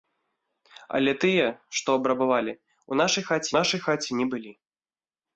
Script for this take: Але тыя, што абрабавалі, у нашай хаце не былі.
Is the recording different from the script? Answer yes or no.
yes